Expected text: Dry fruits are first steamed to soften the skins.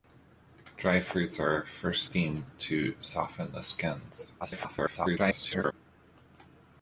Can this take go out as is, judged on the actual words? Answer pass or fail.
fail